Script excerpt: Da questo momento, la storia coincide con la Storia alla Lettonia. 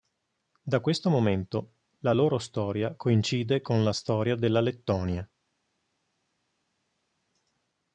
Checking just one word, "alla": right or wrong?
wrong